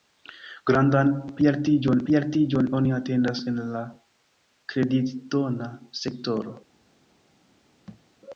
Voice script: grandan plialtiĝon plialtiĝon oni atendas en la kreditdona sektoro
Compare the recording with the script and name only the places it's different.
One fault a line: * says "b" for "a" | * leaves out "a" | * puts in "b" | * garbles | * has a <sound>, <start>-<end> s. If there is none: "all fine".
* has a thud, 7.9-8.1 s